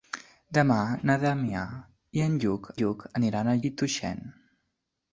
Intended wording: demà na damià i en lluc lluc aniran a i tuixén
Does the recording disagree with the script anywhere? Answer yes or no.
no